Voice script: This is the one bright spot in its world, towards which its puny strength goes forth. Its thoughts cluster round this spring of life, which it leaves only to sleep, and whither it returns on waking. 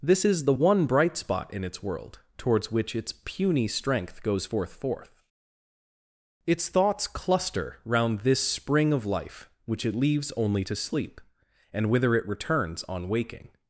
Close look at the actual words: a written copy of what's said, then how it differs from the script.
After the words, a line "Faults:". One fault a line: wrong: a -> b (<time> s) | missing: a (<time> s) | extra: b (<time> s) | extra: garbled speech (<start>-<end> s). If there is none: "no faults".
This is the one bright spot in its world, towards which its puny strength goes forth forth. Its thoughts cluster round this spring of life, which it leaves only to sleep, and whither it returns on waking.
Faults:
extra: forth (4.7 s)